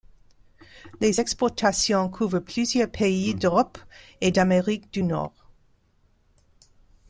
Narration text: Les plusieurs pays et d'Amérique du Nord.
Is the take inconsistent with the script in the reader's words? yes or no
yes